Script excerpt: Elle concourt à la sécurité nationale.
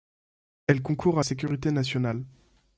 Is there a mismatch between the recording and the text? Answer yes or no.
yes